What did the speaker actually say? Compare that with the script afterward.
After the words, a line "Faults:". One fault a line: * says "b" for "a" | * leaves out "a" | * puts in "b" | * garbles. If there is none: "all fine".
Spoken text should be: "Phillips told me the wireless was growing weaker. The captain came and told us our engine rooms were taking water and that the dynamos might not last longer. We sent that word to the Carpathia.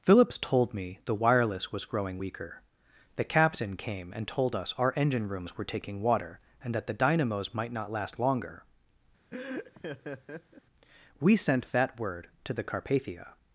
"Phillips told me the wireless was growing weaker. The captain came and told us our engine rooms were taking water and that the dynamos might not last longer. We sent that word to the Carpathia.
Faults:
all fine